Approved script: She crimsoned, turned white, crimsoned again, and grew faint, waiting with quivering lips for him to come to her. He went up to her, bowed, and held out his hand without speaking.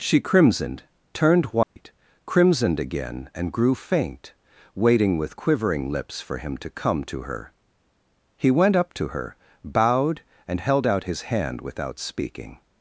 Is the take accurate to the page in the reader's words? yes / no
yes